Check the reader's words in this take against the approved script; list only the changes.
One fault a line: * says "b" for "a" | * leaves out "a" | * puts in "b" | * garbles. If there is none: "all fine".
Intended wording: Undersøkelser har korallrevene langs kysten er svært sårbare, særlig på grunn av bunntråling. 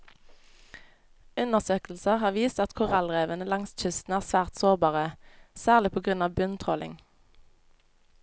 * puts in "vist at"